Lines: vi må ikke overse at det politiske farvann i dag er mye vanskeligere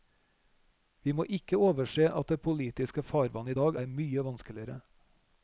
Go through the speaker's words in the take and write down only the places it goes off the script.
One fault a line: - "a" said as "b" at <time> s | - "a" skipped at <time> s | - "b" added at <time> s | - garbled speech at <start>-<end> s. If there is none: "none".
none